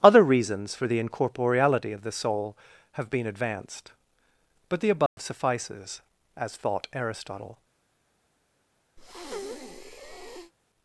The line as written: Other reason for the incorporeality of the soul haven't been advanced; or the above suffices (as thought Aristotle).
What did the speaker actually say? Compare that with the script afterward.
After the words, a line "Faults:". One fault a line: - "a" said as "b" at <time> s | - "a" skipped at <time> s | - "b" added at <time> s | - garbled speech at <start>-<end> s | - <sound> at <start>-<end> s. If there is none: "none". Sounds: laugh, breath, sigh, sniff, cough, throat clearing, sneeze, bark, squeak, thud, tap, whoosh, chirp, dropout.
Other reasons for the incorporeality of the soul have been advanced; but the above suffices (as thought Aristotle).
Faults:
- "reason" said as "reasons" at 0.2 s
- "haven't" said as "have" at 2.9 s
- "or" said as "but" at 4.7 s
- dropout at 5.1-5.2 s
- breath at 9.0-10.5 s